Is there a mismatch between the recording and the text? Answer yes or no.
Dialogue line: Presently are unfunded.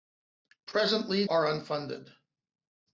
no